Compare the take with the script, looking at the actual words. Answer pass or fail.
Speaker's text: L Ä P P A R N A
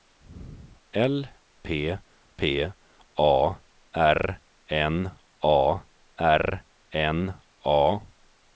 fail